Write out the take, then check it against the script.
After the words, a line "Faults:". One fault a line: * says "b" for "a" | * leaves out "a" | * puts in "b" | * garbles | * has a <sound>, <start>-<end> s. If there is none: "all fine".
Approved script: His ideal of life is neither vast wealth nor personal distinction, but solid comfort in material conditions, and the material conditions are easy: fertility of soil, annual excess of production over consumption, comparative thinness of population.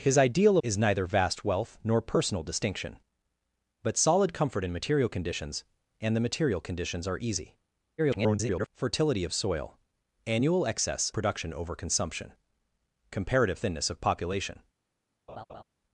His ideal is neither vast wealth nor personal distinction, but solid comfort in material conditions, and the material conditions are easy: [garbled] fertility of soil, annual excess production over consumption, comparative thinness of population.
Faults:
* leaves out "of life"
* garbles
* leaves out "of"
* has a laugh, 15.3-15.6 s